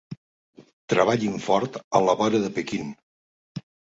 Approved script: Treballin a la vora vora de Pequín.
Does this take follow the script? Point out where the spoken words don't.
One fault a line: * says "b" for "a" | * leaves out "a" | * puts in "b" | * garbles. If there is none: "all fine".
* puts in "fort"
* leaves out "vora"